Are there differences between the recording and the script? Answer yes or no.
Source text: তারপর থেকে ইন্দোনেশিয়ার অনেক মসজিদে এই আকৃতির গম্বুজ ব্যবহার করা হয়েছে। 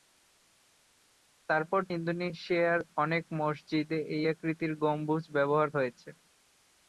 yes